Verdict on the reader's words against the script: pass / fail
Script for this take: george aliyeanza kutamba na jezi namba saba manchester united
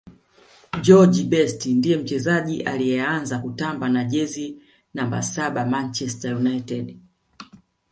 fail